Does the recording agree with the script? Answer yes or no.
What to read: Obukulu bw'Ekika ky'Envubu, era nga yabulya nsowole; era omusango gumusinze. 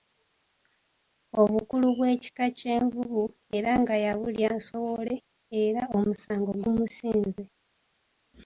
yes